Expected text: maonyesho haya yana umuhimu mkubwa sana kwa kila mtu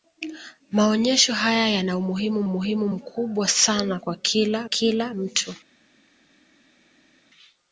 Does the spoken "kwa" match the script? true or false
true